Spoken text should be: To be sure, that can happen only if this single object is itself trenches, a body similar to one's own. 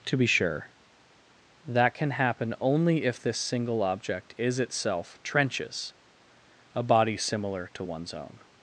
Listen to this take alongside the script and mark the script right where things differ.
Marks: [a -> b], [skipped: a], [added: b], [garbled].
To be sure, that can happen only if this single object is itself trenches, a body similar to one's own.